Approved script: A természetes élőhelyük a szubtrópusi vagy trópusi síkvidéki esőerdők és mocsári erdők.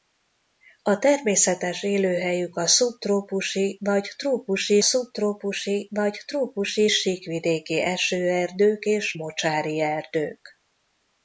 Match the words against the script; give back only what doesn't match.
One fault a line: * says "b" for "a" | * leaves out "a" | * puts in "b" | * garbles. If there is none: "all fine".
* puts in "szubtrópusi vagy trópusi"